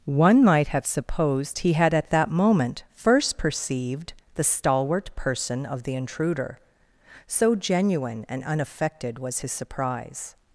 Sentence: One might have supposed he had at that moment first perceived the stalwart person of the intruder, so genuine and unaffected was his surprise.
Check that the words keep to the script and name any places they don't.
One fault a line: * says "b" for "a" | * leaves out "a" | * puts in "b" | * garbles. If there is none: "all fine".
all fine